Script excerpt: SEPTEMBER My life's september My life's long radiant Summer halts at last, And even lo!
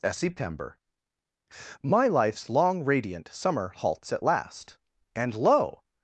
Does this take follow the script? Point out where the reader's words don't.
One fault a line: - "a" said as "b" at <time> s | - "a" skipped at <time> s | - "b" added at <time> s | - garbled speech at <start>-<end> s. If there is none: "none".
- "september My life's" skipped at 2.5 s
- "even" skipped at 5.3 s